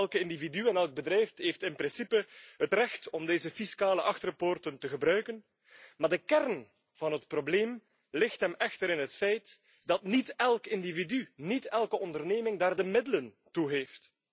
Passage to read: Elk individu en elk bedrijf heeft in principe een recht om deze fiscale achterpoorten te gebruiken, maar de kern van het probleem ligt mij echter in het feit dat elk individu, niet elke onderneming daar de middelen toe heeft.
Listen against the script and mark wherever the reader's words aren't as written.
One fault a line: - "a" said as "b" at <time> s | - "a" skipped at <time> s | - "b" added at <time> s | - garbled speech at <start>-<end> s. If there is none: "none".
- "een" said as "het" at 2.6 s
- "mij" said as "hem" at 8.4 s
- "niet" added at 10.0 s